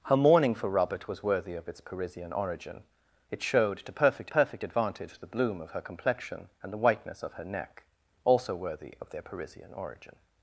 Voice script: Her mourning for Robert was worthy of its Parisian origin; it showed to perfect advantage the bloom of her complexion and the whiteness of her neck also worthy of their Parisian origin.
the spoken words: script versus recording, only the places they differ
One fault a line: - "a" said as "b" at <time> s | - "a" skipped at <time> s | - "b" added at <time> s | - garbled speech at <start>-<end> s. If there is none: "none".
- "perfect" added at 4.3 s